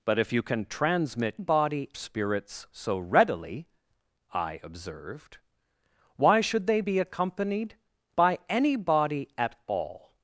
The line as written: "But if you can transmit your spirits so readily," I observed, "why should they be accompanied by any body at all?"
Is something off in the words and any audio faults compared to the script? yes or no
yes